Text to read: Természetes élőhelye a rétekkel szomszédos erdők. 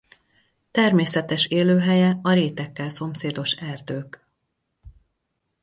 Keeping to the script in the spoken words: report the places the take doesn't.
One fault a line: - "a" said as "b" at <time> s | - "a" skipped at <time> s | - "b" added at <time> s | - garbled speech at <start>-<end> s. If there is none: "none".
none